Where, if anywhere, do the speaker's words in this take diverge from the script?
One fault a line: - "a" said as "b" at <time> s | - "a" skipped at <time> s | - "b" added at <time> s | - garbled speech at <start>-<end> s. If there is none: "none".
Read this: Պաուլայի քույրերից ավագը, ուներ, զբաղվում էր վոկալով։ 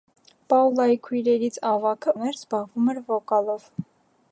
none